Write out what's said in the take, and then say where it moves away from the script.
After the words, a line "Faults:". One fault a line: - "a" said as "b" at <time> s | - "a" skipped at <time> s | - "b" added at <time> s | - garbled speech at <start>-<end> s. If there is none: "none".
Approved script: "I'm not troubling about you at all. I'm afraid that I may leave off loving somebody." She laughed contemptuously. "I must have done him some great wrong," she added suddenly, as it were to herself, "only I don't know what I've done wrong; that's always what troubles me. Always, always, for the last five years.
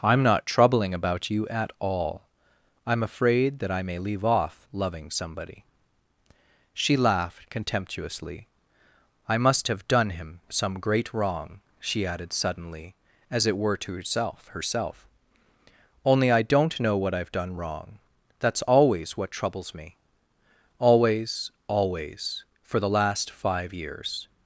"I'm not troubling about you at all. I'm afraid that I may leave off loving somebody." She laughed contemptuously. "I must have done him some great wrong," she added suddenly, as it were to herself herself, "only I don't know what I've done wrong; that's always what troubles me. Always, always, for the last five years.
Faults:
- "herself" added at 14.5 s